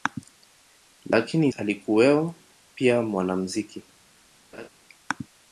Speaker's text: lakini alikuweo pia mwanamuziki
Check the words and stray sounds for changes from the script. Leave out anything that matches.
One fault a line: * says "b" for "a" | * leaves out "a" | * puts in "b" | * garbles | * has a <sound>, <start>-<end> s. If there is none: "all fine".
* has a laugh, 4.5-4.7 s